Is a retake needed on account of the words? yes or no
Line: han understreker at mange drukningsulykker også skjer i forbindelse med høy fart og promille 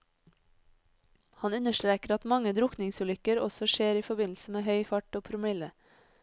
no